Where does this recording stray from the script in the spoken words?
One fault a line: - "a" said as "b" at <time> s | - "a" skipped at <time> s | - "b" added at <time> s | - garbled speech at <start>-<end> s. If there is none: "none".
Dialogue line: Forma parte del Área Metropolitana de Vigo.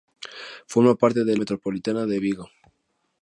- "Área" skipped at 1.4 s